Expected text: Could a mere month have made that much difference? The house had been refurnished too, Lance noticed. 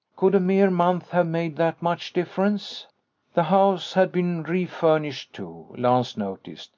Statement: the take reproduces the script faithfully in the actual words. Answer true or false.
true